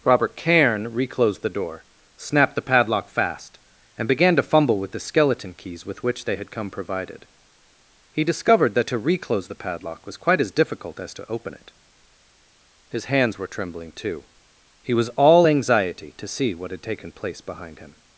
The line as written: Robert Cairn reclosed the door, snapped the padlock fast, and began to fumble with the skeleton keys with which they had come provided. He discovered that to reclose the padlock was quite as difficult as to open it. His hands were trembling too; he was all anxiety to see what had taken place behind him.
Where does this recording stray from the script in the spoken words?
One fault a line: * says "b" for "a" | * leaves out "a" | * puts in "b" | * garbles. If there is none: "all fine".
all fine